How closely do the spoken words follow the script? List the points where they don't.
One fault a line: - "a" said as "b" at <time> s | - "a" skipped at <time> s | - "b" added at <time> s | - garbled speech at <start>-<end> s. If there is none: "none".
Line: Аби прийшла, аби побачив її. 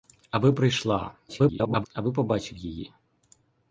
- garbled speech at 1.3-1.9 s